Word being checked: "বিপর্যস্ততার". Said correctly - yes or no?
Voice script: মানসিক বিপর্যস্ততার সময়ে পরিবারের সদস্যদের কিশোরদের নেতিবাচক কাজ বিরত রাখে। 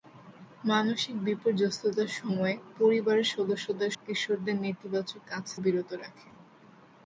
yes